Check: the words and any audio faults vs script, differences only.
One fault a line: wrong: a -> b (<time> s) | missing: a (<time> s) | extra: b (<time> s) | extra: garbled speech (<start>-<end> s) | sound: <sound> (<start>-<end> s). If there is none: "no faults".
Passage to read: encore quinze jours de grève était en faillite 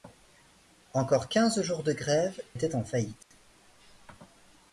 sound: dropout (3.2-3.3 s)